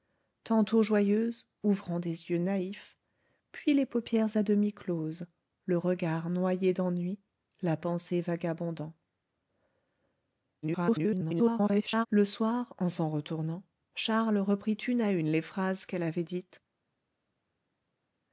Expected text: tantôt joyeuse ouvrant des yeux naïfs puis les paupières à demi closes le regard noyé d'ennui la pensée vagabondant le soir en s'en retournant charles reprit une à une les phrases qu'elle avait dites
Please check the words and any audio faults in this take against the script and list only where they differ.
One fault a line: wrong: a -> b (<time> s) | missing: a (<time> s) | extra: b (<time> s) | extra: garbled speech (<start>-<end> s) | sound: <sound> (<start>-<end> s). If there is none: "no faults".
extra: garbled speech (10.6-12.1 s)